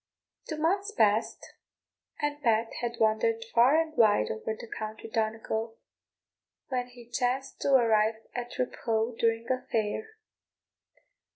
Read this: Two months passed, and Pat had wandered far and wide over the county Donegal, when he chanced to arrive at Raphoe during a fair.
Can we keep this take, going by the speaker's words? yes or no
yes